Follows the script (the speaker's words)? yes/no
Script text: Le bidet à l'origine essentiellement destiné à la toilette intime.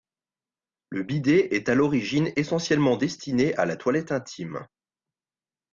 no